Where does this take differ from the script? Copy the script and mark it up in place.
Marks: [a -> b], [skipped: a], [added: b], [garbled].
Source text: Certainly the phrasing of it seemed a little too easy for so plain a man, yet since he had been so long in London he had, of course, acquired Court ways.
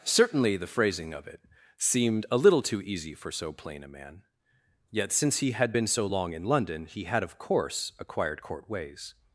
Certainly the phrasing of it seemed a little too easy for so plain a man, yet since he had been so long in London he had, of course, acquired Court ways.